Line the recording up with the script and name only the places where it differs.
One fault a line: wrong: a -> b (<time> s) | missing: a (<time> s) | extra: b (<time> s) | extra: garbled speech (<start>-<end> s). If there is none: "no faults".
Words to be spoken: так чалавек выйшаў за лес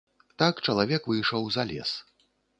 no faults